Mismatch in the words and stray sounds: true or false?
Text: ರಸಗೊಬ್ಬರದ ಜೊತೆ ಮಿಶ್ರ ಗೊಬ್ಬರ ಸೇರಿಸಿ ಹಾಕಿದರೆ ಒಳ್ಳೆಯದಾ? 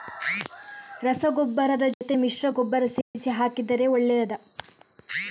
true